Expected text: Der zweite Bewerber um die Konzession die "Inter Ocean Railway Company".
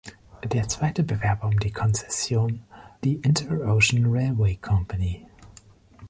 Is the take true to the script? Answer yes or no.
yes